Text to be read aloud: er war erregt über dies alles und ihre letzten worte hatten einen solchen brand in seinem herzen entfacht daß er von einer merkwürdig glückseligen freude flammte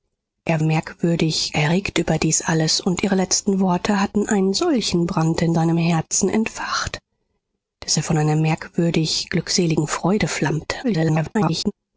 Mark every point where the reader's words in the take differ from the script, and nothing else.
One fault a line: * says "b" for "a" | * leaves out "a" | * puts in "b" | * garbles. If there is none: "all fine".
* says "merkwürdig" for "war"
* garbles